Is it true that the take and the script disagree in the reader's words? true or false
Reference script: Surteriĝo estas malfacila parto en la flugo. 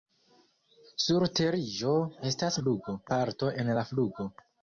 true